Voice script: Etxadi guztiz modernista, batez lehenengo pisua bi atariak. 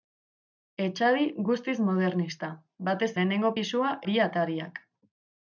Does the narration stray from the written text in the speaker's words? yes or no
no